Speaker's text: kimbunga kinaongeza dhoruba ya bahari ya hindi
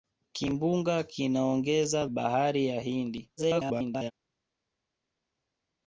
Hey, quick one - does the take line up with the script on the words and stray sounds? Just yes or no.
no